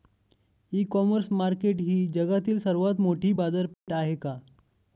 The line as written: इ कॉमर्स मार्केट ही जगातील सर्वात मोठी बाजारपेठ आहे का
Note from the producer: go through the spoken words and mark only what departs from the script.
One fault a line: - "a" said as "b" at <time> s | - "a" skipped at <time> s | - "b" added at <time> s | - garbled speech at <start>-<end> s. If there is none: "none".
none